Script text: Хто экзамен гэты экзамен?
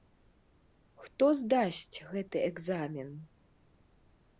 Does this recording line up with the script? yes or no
no